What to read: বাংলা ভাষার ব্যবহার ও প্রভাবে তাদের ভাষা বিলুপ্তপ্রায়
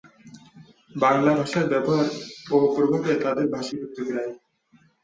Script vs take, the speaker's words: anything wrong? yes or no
no